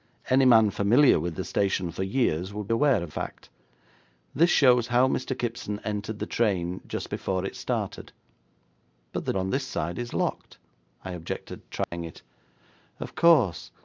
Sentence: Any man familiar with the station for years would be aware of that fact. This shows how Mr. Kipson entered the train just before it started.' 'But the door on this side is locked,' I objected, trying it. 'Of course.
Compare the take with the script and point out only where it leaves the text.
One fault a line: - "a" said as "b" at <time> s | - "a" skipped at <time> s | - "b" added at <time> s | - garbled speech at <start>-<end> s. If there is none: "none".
- "be" skipped at 2.7 s
- "that" skipped at 3.1 s
- "door" skipped at 9.3 s